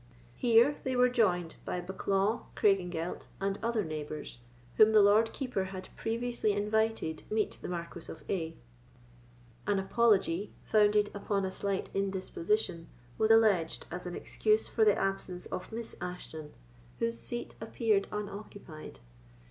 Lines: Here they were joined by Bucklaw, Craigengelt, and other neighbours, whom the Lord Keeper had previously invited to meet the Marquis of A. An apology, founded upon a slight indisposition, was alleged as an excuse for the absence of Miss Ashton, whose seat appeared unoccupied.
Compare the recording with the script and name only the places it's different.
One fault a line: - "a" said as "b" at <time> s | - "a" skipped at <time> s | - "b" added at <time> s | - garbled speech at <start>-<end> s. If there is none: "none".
- "to" skipped at 7.2 s